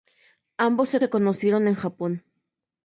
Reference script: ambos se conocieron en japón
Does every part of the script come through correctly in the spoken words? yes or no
no